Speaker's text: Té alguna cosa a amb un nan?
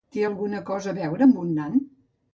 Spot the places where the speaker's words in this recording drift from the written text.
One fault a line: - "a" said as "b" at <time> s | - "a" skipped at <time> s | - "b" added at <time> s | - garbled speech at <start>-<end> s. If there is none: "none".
- "veure" added at 1.0 s